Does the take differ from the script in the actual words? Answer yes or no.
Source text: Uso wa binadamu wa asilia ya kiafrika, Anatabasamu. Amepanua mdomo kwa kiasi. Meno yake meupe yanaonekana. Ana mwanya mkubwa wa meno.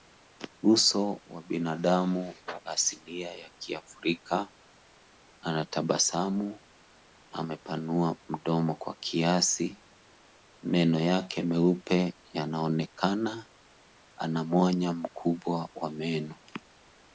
no